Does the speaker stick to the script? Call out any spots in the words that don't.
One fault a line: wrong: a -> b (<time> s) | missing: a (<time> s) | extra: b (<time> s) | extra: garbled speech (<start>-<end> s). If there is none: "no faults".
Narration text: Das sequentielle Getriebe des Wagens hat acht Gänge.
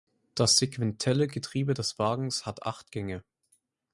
no faults